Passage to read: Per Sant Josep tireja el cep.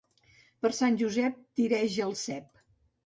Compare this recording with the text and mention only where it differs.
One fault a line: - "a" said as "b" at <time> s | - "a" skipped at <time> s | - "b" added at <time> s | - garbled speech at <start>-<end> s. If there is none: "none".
none